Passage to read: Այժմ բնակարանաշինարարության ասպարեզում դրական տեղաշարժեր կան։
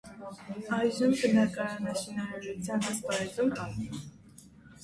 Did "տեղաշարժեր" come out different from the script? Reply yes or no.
yes